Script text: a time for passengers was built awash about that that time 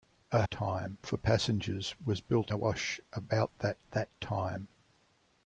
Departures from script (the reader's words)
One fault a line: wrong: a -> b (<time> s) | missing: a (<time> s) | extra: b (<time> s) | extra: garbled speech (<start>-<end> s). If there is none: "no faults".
no faults